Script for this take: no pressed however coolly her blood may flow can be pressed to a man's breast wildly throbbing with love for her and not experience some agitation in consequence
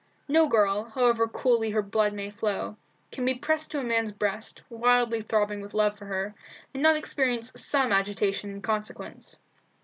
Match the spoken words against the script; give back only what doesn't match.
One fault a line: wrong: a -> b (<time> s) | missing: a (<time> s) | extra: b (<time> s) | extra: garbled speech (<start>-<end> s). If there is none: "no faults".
wrong: pressed -> girl (0.5 s)